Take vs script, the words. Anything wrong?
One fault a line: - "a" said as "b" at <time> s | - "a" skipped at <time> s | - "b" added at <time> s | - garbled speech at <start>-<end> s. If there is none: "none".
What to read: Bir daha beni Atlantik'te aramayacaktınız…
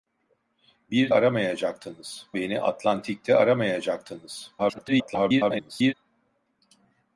- "daha" said as "aramayacaktınız" at 1.1 s
- garbled speech at 4.6-5.9 s